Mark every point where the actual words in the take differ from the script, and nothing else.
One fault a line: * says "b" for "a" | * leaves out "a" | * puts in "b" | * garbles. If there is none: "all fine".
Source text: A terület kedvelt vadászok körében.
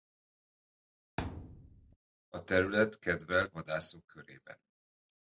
all fine